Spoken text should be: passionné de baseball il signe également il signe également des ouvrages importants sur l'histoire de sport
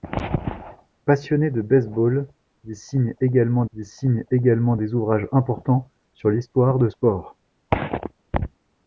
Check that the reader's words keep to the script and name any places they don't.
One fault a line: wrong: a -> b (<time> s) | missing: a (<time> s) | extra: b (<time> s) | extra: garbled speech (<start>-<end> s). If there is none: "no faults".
no faults